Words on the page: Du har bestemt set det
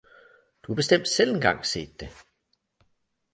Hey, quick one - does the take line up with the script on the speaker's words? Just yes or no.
no